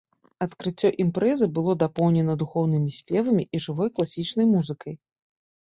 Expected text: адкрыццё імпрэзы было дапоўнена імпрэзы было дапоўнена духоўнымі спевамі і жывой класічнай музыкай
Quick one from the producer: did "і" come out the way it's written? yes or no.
yes